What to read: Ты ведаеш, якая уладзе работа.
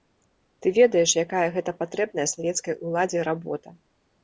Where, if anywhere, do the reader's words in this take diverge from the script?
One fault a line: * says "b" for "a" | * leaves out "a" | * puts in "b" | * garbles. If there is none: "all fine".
* puts in "гэта патрэбная савецкай"